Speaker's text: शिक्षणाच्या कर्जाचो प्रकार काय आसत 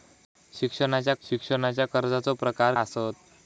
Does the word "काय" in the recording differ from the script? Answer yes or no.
yes